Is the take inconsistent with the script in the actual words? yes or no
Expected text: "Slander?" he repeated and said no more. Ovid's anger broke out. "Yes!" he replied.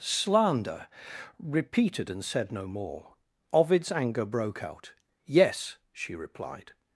yes